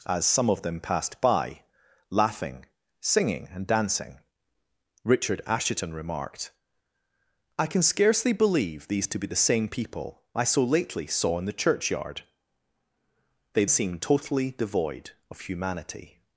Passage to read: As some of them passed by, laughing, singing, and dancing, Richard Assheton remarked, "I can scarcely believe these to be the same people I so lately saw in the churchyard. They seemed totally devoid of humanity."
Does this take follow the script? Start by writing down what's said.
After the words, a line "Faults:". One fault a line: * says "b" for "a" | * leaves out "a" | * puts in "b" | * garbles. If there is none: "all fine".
As some of them passed by, laughing, singing, and dancing, Richard Assheton remarked, "I can scarcely believe these to be the same people I so lately saw in the churchyard. They seemed totally devoid of humanity."
Faults:
all fine